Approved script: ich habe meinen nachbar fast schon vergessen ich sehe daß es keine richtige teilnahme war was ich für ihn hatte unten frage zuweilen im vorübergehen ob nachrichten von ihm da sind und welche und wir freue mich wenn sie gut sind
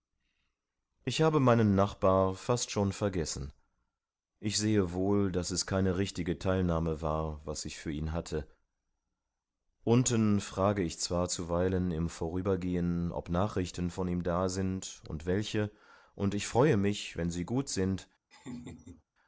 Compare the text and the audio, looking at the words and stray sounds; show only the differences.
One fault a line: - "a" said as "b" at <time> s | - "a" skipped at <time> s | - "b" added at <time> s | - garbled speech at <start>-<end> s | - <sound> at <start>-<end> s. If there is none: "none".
- "wohl" added at 4.9 s
- "ich zwar" added at 10.8 s
- "wir" said as "ich" at 16.3 s
- laugh at 18.3-19.0 s